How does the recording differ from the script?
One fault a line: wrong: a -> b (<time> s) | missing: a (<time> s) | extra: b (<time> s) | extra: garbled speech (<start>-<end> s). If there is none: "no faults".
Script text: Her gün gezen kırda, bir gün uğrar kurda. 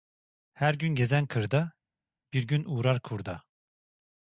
no faults